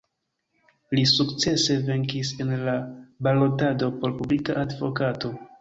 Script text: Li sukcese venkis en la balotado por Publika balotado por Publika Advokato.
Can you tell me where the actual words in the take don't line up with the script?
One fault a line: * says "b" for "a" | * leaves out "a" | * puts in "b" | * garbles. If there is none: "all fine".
* leaves out "balotado por Publika"